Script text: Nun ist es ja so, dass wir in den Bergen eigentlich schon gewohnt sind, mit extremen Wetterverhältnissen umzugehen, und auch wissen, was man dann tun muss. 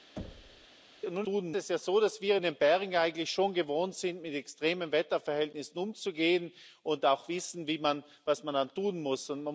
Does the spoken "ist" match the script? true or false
false